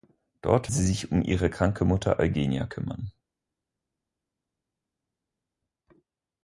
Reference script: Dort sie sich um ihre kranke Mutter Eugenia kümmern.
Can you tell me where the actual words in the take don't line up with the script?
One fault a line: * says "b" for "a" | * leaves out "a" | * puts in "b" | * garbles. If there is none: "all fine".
all fine